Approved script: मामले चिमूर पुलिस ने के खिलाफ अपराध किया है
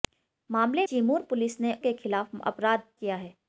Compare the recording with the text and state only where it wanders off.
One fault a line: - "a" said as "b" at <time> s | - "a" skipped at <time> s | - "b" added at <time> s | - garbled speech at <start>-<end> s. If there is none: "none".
none